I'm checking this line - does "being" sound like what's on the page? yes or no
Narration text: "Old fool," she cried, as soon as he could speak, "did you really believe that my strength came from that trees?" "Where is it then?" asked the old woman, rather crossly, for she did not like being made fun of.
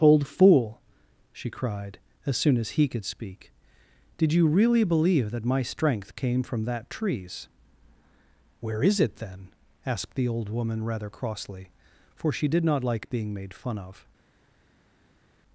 yes